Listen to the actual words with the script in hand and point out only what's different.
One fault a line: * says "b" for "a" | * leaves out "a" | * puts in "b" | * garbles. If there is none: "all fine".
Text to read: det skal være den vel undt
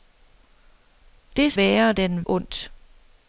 * leaves out "skal"
* leaves out "vel"